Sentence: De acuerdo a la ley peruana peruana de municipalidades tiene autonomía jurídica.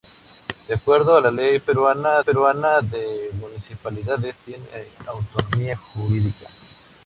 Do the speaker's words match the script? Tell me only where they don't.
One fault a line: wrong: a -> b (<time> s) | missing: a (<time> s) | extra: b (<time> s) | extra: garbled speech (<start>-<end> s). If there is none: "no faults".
no faults